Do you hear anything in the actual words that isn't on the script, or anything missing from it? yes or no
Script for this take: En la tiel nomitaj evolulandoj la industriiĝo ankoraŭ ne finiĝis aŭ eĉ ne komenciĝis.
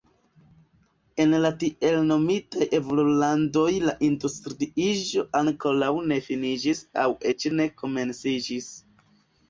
no